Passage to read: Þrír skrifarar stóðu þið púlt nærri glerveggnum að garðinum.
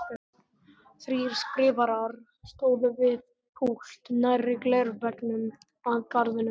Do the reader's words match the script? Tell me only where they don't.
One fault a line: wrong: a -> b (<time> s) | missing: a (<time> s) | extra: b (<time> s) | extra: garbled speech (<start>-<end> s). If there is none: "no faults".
wrong: þið -> við (3.0 s)